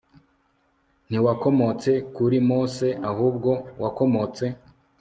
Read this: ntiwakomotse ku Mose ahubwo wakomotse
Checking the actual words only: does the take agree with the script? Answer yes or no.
no